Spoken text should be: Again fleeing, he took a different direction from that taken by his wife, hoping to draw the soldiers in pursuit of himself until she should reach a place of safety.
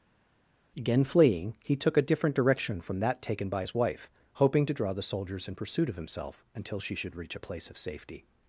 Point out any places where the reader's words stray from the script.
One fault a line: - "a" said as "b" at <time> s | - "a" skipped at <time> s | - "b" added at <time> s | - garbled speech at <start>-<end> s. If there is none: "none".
none